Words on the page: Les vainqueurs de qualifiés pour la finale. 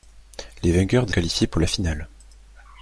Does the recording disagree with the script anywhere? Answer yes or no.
no